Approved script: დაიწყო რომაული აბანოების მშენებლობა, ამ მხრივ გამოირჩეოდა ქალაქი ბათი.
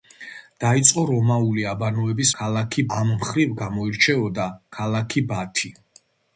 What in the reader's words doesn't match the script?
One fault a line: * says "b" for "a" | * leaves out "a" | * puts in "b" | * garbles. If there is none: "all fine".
* says "ქალაქი" for "მშენებლობა"